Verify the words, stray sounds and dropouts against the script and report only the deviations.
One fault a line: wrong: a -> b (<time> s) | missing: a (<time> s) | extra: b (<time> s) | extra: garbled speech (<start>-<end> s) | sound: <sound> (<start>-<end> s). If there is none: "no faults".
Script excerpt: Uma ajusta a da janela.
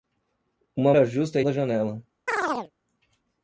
sound: chirp (2.3-2.7 s)